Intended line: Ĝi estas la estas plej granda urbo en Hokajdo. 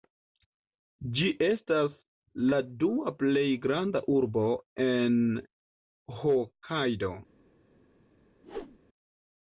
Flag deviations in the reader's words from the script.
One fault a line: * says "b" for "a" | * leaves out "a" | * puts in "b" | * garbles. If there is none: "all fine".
* says "dua" for "estas"